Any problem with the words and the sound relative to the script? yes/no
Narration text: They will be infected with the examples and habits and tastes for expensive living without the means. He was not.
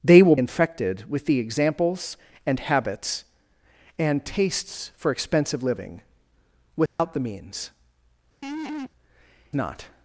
yes